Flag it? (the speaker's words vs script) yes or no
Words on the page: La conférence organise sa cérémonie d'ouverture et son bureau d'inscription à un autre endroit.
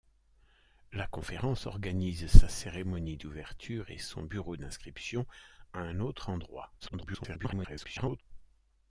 yes